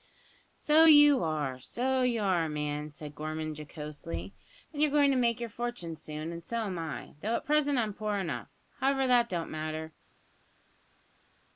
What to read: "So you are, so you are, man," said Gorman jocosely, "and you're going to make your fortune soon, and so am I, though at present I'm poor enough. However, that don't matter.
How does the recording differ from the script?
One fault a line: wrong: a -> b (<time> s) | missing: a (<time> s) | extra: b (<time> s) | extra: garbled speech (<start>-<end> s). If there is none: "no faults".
no faults